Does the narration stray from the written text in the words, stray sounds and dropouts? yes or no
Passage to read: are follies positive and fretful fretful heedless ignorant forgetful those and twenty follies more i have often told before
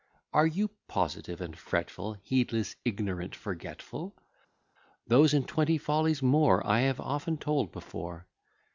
yes